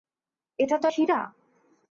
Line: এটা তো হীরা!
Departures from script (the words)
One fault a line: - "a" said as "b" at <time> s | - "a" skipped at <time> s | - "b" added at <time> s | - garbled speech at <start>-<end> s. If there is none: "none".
none